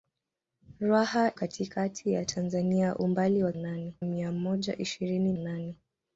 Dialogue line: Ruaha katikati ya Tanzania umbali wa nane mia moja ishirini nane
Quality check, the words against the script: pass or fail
pass